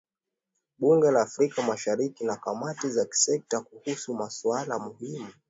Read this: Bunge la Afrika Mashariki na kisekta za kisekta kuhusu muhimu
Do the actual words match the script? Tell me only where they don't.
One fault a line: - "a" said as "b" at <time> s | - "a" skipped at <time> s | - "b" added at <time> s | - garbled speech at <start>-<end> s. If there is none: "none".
- "kisekta" said as "kamati" at 2.4 s
- "masuala" added at 4.1 s